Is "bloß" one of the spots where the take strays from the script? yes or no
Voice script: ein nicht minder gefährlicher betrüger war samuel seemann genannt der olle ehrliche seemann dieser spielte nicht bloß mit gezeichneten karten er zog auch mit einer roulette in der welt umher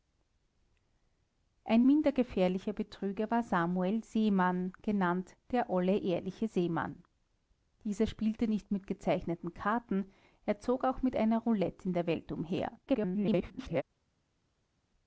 yes